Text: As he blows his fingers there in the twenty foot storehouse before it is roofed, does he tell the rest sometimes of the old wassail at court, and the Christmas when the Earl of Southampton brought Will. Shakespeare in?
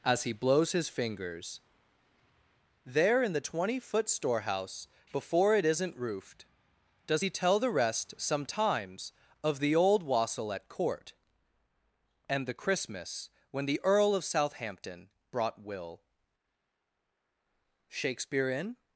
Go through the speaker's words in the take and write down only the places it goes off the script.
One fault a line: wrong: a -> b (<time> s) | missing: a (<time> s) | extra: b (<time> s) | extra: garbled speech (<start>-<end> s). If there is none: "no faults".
wrong: is -> isn't (5.7 s)